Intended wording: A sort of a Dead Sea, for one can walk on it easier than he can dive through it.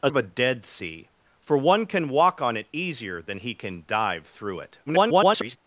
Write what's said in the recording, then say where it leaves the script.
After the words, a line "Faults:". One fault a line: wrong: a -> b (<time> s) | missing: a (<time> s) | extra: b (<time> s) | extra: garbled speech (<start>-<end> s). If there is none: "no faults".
A of a Dead Sea, for one can walk on it easier than he can dive through it. [garbled]
Faults:
missing: sort (0.1 s)
extra: garbled speech (4.9-5.6 s)